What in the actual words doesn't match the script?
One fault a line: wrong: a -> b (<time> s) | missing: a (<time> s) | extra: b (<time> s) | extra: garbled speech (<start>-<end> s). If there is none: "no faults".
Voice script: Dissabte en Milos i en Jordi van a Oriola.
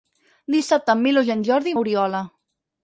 missing: van (1.8 s)